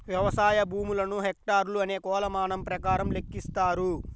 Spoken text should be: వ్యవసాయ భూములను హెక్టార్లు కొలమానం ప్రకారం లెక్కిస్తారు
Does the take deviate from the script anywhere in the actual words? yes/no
yes